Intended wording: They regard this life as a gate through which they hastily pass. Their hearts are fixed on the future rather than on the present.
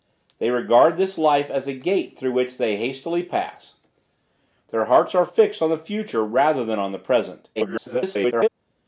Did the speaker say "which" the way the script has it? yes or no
yes